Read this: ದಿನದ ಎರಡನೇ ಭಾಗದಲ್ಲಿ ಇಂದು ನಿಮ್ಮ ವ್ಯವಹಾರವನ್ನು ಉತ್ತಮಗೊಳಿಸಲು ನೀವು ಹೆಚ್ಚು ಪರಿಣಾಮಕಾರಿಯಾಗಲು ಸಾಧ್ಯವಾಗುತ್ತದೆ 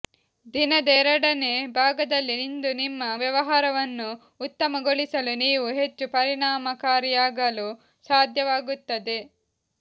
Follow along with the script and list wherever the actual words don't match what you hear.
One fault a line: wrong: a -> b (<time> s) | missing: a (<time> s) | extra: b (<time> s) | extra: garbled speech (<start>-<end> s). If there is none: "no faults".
no faults